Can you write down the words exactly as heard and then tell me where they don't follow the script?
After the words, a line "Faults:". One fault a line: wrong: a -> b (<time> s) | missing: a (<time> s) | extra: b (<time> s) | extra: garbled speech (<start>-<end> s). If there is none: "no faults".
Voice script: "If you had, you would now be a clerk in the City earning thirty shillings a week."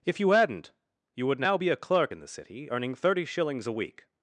"If you hadn't, you would now be a clerk in the City earning thirty shillings a week."
Faults:
wrong: had -> hadn't (0.3 s)